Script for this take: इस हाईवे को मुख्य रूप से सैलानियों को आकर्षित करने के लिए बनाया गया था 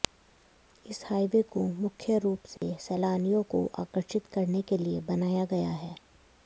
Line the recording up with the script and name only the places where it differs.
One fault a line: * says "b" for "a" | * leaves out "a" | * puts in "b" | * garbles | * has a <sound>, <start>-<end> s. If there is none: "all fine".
* has a dropout, 2.6-2.6 s
* says "है" for "था"